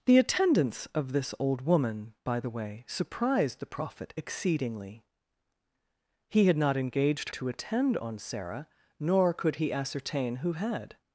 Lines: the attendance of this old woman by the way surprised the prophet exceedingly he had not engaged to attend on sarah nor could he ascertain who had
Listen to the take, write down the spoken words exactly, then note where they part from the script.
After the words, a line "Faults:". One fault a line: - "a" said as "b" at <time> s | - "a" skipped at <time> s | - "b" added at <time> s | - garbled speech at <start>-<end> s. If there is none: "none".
the attendance of this old woman by the way surprised the prophet exceedingly he had not engaged to attend on sarah nor could he ascertain who had
Faults:
none